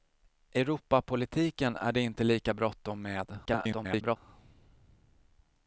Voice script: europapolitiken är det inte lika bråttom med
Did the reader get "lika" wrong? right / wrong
right